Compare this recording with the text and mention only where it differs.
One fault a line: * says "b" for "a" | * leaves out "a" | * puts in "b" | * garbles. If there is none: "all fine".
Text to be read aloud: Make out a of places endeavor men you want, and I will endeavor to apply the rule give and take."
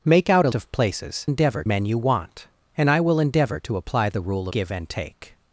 all fine